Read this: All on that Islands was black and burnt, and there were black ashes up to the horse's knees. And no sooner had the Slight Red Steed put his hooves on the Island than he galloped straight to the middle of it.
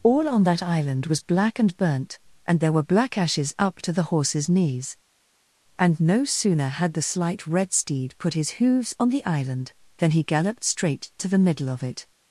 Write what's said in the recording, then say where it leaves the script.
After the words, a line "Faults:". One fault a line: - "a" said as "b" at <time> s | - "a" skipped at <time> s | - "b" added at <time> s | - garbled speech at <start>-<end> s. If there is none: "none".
All on that Island was black and burnt, and there were black ashes up to the horse's knees. And no sooner had the Slight Red Steed put his hooves on the Island than he galloped straight to the middle of it.
Faults:
- "Islands" said as "Island" at 0.6 s